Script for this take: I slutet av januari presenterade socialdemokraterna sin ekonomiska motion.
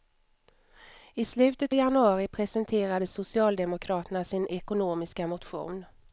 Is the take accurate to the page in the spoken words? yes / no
no